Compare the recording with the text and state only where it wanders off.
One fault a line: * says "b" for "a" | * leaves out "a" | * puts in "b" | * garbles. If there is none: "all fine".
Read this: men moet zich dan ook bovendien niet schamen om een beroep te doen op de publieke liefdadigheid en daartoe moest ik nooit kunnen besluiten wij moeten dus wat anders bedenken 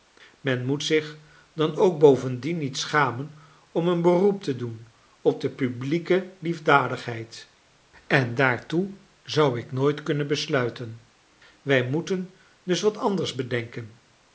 * says "zou" for "moest"